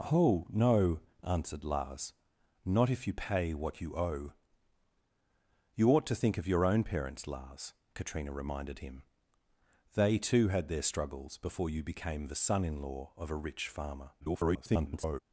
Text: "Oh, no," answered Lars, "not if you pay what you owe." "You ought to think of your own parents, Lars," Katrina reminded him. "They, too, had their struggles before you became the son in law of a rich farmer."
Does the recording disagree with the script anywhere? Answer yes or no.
yes